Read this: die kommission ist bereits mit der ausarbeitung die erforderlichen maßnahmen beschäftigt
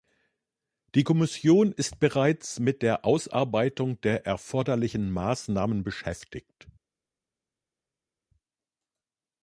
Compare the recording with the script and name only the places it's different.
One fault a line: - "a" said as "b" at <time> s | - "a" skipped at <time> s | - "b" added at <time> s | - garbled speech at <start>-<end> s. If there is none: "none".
- "die" said as "der" at 4.0 s